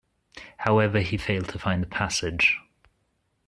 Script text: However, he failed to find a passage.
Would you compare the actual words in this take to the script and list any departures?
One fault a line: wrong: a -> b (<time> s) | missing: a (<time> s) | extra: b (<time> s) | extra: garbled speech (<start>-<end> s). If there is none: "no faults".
no faults